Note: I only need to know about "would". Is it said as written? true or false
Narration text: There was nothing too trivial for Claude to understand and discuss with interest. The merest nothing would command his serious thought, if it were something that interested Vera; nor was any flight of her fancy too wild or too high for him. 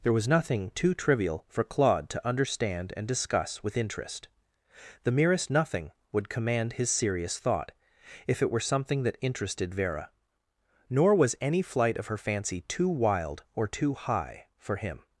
true